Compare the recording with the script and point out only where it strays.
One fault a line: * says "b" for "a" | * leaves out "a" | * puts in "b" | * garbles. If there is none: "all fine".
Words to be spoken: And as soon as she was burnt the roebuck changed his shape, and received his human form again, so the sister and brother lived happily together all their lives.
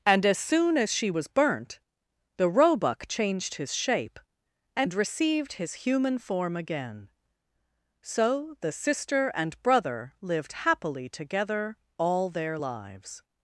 all fine